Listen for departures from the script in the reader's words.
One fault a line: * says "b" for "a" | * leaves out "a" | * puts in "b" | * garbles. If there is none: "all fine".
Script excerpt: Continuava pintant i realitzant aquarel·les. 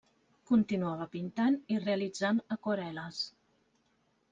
all fine